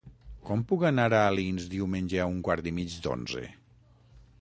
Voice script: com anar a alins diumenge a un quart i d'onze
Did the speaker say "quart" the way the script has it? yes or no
yes